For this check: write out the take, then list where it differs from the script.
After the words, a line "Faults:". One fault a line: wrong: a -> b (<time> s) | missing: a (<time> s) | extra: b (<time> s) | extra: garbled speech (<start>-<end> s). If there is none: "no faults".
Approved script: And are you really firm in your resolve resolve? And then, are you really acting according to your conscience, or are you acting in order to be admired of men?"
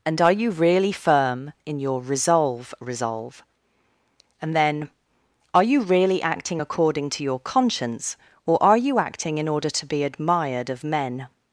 And are you really firm in your resolve resolve? And then, are you really acting according to your conscience, or are you acting in order to be admired of men?"
Faults:
no faults